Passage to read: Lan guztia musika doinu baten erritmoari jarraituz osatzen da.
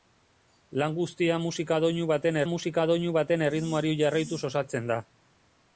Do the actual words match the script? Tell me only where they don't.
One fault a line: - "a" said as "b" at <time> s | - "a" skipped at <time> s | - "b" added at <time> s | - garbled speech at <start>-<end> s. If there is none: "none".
- "musika doinu baten" added at 2.5 s